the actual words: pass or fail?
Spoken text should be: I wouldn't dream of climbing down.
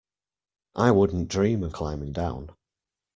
pass